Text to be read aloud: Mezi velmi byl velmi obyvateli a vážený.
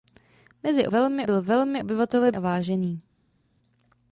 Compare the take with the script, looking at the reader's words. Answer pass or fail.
pass